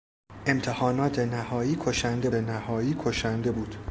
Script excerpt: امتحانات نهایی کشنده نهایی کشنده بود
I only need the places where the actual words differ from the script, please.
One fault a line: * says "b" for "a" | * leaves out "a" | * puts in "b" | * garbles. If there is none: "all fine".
all fine